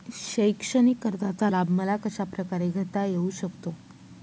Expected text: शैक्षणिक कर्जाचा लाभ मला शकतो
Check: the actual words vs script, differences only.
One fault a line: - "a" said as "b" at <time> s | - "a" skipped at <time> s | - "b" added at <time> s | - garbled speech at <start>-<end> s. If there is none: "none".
- "कशाप्रकारे घेता येऊ" added at 2.0 s